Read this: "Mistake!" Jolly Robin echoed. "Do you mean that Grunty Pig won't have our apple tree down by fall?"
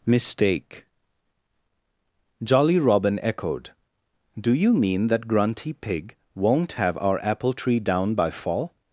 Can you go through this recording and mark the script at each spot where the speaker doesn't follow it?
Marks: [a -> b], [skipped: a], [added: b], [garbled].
"Mistake!" Jolly Robin echoed. "Do you mean that Grunty Pig won't have our apple tree down by fall?"